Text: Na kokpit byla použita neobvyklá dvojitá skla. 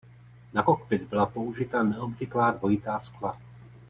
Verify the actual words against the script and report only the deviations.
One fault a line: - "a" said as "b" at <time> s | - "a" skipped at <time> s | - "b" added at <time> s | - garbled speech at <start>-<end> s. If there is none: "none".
none